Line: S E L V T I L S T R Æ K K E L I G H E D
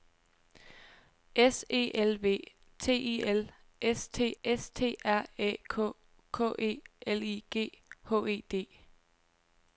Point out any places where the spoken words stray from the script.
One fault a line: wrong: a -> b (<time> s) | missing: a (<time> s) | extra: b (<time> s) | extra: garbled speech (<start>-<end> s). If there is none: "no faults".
extra: S T (4.4 s)